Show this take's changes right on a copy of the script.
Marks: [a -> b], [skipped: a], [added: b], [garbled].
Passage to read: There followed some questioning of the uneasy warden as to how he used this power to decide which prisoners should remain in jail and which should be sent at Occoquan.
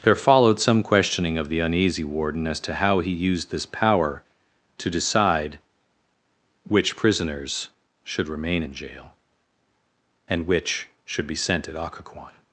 There followed some questioning of the uneasy warden as to how he used this power to decide which prisoners should remain in jail and which should be sent at Occoquan.